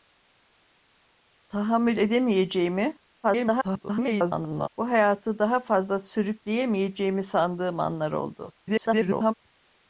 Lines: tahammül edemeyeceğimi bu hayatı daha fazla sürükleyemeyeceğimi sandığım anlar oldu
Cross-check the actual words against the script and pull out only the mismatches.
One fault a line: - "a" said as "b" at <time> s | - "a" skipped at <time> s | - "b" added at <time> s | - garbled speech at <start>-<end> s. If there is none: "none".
- garbled speech at 3.2-4.7 s
- garbled speech at 8.6-9.3 s